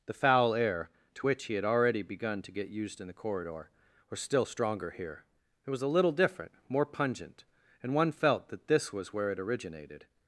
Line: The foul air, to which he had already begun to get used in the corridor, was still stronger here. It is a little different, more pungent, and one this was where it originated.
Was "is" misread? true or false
true